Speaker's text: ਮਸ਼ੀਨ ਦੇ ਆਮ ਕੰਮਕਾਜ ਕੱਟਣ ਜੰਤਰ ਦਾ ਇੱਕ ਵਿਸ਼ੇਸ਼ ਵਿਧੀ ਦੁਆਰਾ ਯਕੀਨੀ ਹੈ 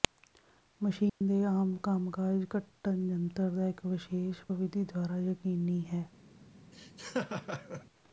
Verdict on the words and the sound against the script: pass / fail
fail